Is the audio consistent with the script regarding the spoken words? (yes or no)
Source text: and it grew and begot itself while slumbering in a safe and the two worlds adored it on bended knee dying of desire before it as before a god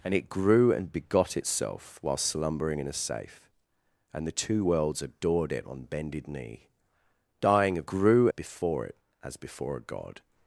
no